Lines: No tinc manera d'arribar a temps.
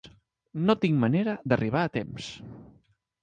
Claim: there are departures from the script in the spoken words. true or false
false